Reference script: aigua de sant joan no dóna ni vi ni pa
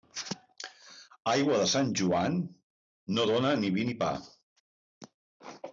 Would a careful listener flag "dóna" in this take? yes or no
no